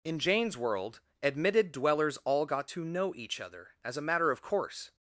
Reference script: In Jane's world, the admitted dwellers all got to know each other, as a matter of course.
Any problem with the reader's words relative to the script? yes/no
yes